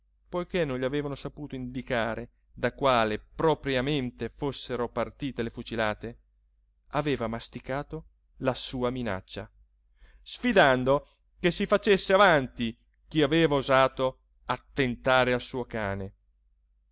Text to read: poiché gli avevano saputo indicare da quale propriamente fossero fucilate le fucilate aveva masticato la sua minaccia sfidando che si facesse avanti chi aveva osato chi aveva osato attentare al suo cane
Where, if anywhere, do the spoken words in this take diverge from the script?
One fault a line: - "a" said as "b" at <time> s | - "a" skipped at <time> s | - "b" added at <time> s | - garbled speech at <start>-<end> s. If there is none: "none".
- "non" added at 0.7 s
- "fucilate" said as "partite" at 4.9 s
- "chi aveva osato" skipped at 14.2 s